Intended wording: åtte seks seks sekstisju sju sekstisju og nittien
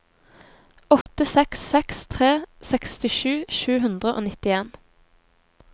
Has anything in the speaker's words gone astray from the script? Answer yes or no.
yes